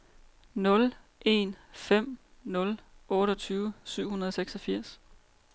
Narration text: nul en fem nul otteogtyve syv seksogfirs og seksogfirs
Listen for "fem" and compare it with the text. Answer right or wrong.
right